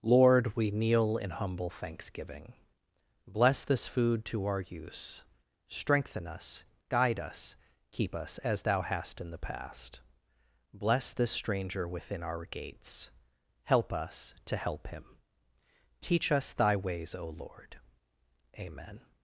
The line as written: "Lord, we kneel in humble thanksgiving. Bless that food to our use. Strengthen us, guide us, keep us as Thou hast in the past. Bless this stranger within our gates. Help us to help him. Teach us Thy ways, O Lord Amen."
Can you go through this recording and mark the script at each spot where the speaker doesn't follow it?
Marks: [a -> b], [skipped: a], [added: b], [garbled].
"Lord, we kneel in humble thanksgiving. Bless [that -> this] food to our use. Strengthen us, guide us, keep us as Thou hast in the past. Bless this stranger within our gates. Help us to help him. Teach us Thy ways, O Lord Amen."